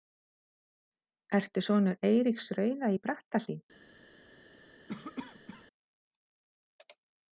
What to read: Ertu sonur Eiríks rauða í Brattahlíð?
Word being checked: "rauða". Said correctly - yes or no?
yes